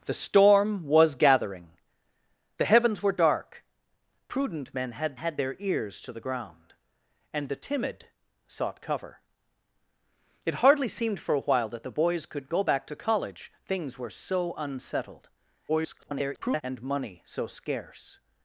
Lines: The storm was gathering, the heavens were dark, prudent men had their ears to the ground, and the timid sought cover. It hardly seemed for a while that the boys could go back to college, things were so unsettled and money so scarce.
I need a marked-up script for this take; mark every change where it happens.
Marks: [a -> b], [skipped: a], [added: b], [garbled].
The storm was gathering, the heavens were dark, prudent men had [added: had] their ears to the ground, and the timid sought cover. It hardly seemed for a while that the boys could go back to college, things were so unsettled [garbled] and money so scarce.